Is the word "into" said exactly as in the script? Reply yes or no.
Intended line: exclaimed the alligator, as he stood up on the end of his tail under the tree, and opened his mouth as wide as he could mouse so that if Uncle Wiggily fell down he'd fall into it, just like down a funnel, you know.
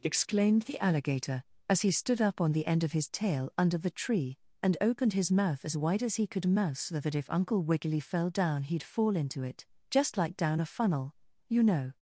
yes